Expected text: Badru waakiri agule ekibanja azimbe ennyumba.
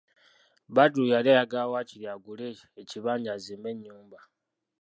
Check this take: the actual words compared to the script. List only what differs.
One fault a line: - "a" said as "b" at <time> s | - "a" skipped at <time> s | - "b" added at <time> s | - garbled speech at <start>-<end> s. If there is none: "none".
- "yali ayagala" added at 1.1 s